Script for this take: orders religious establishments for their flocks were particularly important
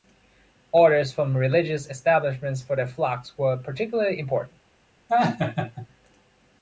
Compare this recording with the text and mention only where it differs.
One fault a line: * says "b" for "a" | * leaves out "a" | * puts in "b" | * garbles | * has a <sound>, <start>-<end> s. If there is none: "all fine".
* puts in "from"
* has a laugh, 5.1-5.9 s